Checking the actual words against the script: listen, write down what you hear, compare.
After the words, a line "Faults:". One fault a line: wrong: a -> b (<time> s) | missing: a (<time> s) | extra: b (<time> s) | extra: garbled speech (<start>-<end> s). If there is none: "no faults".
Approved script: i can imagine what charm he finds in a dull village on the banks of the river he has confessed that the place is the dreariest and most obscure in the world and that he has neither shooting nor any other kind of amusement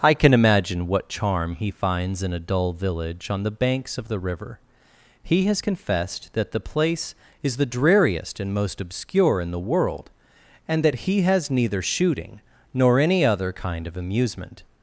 i can imagine what charm he finds in a dull village on the banks of the river he has confessed that the place is the dreariest and most obscure in the world and that he has neither shooting nor any other kind of amusement
Faults:
no faults